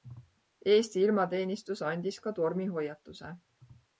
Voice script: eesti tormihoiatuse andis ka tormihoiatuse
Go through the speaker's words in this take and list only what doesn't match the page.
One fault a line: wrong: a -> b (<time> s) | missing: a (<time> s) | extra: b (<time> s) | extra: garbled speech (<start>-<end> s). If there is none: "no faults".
wrong: tormihoiatuse -> ilmateenistus (1.1 s)